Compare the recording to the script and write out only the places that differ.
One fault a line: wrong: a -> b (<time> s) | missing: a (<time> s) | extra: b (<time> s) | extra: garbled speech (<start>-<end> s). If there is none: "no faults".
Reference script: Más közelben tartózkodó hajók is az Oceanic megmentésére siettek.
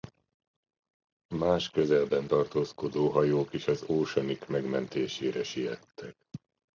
no faults